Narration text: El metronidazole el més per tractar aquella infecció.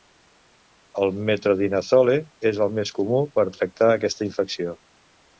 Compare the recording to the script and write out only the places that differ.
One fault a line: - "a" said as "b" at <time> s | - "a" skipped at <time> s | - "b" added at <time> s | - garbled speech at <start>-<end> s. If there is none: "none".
- "és" added at 2.5 s
- "comú" added at 3.0 s
- "aquella" said as "aquesta" at 4.0 s